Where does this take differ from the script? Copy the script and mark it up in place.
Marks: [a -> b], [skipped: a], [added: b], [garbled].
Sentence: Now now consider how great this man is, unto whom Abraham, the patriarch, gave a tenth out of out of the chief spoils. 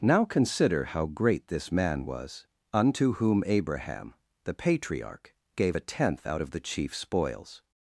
Now [skipped: now] consider how great this man [is, -> was] unto whom Abraham, the patriarch, gave a tenth out of [skipped: out of] the chief spoils.